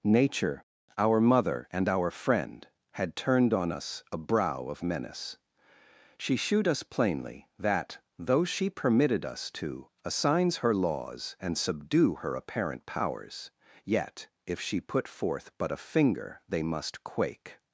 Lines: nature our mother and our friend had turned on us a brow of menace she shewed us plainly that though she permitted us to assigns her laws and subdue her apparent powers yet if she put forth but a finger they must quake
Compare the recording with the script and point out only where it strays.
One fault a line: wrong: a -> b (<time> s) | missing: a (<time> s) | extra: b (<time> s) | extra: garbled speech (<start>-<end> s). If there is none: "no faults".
no faults